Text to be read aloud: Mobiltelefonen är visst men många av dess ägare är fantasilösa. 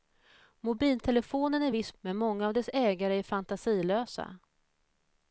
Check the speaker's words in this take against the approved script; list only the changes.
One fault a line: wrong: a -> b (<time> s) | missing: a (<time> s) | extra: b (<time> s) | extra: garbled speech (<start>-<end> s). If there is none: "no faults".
no faults